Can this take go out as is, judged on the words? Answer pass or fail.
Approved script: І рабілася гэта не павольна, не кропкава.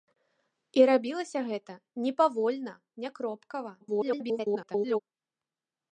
fail